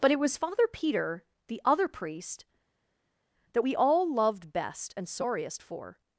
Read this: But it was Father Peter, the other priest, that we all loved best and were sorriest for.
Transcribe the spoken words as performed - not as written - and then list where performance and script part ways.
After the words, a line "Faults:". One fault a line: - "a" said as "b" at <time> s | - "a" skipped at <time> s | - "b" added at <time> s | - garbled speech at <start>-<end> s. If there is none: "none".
But it was Father Peter, the other priest, that we all loved best and sorriest for.
Faults:
- "were" skipped at 5.1 s